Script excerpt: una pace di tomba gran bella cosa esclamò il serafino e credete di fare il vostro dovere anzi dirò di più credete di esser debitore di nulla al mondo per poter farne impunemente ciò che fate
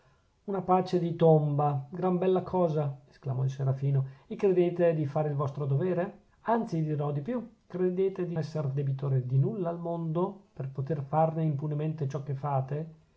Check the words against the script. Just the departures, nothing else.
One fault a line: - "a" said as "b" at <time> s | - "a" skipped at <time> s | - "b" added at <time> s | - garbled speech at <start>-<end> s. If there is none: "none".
none